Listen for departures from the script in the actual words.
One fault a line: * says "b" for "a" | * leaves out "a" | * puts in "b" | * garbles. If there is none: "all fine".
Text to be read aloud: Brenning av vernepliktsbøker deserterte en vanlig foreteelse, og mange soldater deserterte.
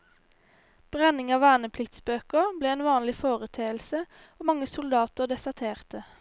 * says "ble" for "deserterte"